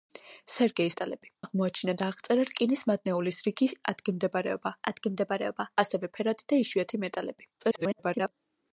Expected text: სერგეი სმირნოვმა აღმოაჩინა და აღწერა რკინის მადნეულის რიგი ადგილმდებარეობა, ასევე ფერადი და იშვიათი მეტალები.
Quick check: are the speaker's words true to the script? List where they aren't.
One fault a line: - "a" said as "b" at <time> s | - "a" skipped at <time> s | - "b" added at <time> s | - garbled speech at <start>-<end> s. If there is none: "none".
- "სმირნოვმა" said as "მეტალები" at 0.9 s
- "ადგილმდებარეობა" added at 4.9 s
- garbled speech at 7.6-8.3 s